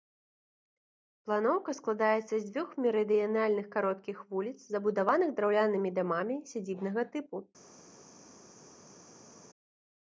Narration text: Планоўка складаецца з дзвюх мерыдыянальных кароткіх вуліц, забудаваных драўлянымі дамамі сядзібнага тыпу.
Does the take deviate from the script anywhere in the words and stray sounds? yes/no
no